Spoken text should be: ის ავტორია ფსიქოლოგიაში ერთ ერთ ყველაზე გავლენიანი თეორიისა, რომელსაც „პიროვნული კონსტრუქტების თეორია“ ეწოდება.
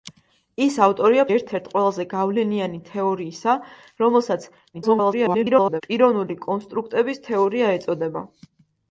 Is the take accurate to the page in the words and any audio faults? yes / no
no